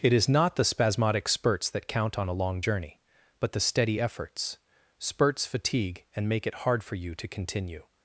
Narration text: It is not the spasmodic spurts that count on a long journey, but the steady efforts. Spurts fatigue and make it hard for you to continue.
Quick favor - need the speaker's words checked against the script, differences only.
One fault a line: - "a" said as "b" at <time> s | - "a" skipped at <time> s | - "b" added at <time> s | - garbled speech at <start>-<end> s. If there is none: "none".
none